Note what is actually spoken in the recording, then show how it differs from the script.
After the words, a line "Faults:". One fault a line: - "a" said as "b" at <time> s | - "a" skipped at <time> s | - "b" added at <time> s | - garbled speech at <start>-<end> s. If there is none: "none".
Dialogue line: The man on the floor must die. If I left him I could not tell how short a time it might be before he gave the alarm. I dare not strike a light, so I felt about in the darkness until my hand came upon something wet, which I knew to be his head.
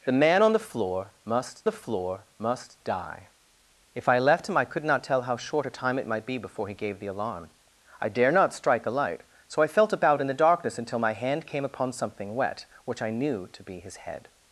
The man on the floor must the floor must die. If I left him I could not tell how short a time it might be before he gave the alarm. I dare not strike a light, so I felt about in the darkness until my hand came upon something wet, which I knew to be his head.
Faults:
- "the floor must" added at 1.6 s